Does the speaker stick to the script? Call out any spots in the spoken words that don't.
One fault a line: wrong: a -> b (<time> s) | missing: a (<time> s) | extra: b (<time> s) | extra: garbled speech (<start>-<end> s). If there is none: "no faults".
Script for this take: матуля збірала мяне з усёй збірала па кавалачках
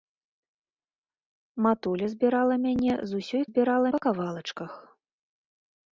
no faults